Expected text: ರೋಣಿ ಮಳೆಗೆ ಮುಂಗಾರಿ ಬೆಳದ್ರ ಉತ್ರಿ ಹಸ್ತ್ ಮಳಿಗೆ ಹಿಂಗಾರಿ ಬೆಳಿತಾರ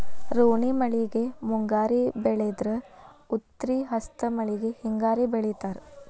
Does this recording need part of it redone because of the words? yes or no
no